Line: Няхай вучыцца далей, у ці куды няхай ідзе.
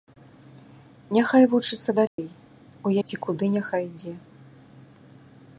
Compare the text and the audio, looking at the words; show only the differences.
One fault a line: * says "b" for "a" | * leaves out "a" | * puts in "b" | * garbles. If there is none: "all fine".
all fine